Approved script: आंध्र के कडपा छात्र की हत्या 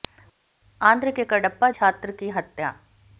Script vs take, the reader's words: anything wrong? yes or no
no